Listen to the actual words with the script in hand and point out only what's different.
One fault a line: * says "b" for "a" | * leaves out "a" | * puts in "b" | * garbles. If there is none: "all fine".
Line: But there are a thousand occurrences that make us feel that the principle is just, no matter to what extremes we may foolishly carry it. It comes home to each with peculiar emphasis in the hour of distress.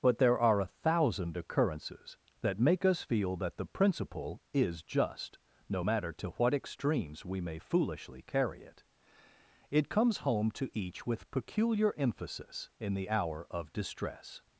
all fine